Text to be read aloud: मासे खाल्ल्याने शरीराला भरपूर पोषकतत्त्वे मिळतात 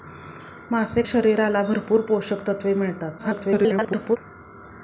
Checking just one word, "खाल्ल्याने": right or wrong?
wrong